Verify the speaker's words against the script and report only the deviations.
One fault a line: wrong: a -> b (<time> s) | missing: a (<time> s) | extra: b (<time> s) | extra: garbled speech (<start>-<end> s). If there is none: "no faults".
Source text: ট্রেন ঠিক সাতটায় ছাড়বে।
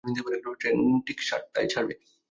no faults